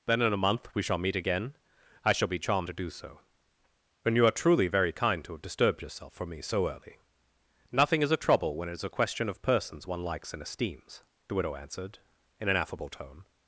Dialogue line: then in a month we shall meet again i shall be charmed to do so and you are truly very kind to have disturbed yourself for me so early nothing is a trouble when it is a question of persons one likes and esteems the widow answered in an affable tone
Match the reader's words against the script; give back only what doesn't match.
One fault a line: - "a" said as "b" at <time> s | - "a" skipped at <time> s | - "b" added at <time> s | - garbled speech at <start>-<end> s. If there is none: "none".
none